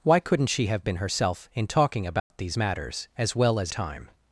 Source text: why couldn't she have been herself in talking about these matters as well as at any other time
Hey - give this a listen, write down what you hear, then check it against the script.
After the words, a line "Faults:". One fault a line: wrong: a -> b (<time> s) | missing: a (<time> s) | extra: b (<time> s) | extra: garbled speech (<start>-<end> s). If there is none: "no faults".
why couldn't she have been herself in talking about these matters as well as time
Faults:
missing: at any other (3.7 s)